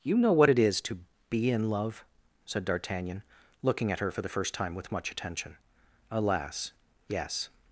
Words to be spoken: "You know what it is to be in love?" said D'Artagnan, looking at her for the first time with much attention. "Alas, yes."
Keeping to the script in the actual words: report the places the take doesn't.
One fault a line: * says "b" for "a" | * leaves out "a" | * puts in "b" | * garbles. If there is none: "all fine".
all fine